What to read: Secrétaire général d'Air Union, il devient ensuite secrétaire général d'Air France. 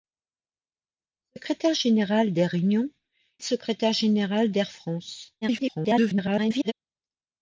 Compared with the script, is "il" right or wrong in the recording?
wrong